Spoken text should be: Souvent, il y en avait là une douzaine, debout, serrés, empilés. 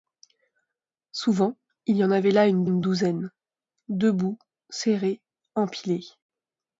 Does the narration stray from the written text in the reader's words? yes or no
yes